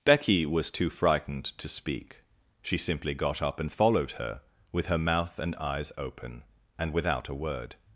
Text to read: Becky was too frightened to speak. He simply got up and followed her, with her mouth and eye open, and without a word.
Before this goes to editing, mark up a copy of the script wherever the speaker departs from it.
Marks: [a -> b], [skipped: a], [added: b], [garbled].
Becky was too frightened to speak. [He -> She] simply got up and followed her, with her mouth and [eye -> eyes] open, and without a word.